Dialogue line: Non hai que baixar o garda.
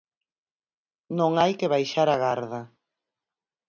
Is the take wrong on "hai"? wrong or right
right